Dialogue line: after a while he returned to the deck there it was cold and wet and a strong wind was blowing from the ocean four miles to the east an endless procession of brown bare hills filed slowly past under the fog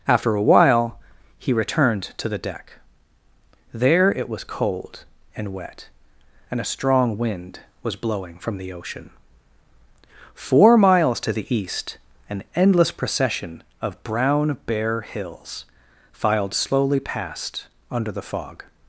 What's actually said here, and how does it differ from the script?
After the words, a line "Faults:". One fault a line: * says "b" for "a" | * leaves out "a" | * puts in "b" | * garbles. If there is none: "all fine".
after a while he returned to the deck there it was cold and wet and a strong wind was blowing from the ocean four miles to the east an endless procession of brown bare hills filed slowly past under the fog
Faults:
all fine